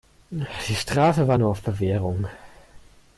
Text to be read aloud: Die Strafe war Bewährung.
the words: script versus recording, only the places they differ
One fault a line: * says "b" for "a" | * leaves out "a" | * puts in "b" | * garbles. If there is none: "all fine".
* puts in "nur auf"